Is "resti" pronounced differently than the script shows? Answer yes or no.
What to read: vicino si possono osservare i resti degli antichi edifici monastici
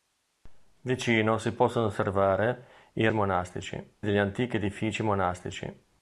yes